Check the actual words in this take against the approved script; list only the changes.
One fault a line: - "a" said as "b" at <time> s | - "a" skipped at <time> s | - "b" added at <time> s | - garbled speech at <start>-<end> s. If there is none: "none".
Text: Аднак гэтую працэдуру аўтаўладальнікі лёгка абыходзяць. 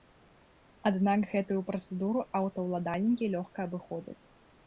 none